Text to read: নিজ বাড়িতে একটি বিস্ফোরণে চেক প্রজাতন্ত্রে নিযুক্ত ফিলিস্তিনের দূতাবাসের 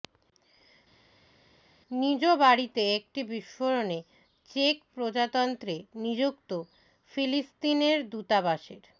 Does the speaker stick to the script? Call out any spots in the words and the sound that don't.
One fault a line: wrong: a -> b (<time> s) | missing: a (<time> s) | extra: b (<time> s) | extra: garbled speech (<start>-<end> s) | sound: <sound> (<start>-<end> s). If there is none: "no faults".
no faults